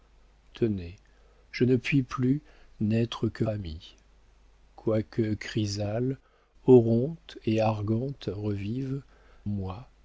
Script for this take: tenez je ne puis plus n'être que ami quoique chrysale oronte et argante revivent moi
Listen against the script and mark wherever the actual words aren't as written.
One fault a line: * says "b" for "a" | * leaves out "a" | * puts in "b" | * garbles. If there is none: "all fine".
all fine